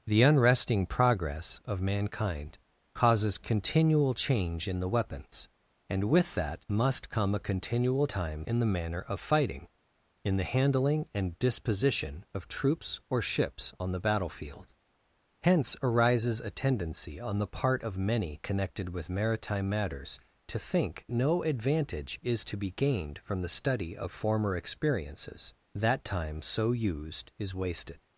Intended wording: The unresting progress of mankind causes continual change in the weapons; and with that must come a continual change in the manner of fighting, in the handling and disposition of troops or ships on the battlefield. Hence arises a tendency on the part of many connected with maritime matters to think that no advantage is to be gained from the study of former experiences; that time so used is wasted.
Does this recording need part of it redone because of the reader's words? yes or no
yes